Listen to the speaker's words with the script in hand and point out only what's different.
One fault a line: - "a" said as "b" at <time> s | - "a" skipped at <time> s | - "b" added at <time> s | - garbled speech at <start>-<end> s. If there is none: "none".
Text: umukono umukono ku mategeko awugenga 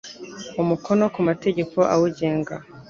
- "umukono" skipped at 1.0 s